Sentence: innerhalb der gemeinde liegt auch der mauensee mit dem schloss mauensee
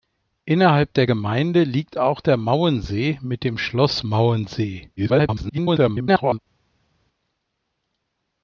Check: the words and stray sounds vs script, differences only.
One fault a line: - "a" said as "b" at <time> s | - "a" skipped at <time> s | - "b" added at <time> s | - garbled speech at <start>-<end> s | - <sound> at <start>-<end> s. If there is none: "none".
- garbled speech at 5.0-6.4 s